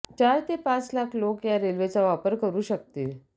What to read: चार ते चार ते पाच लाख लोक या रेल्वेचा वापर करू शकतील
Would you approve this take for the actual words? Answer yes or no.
no